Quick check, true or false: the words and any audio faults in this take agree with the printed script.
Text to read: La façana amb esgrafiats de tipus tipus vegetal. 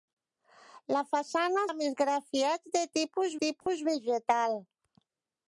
false